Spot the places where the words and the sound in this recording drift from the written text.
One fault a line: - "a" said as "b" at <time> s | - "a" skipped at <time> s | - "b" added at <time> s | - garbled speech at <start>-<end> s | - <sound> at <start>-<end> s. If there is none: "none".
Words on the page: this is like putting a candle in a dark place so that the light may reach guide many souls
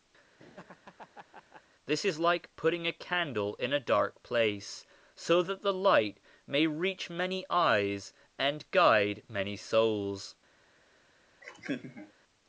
- laugh at 0.4-1.6 s
- "many eyes and" added at 7.1 s
- laugh at 11.4-12.1 s